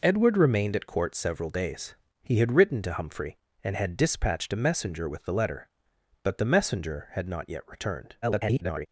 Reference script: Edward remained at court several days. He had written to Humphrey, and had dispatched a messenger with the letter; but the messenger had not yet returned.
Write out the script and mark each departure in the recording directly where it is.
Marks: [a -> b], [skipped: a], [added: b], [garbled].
Edward remained at court several days. He had written to Humphrey, and had dispatched a messenger with the letter; but the messenger had not yet returned. [garbled]